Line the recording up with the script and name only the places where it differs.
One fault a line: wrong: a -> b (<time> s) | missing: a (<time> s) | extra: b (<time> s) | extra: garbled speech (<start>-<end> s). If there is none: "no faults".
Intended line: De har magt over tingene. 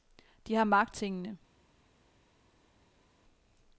missing: over (0.9 s)